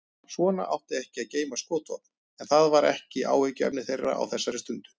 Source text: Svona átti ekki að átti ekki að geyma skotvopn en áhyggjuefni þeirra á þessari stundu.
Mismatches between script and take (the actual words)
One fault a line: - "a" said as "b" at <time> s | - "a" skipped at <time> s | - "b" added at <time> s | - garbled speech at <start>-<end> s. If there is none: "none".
- "átti ekki að geyma skotvopn en" said as "geyma skotvopn en það var ekki" at 1.4 s